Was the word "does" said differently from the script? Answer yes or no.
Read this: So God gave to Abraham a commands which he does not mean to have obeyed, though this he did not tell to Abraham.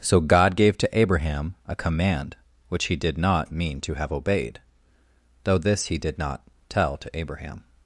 yes